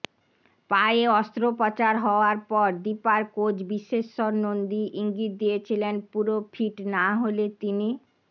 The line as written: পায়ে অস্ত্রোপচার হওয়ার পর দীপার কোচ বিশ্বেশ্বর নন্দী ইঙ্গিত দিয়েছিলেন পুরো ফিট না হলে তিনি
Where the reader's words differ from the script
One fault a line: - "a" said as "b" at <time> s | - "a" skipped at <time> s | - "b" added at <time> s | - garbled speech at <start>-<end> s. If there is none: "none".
none